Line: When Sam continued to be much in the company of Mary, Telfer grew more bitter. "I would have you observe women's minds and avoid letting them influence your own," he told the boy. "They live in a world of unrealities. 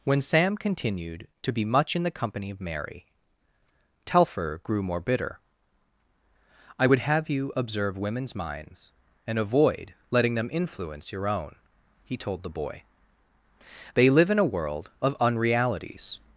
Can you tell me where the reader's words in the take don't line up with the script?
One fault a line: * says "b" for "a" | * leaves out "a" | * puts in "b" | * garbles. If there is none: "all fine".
all fine